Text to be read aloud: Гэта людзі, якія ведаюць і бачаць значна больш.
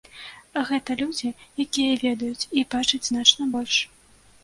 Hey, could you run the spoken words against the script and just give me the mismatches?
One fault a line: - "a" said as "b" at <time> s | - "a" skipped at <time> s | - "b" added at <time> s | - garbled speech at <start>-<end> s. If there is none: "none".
none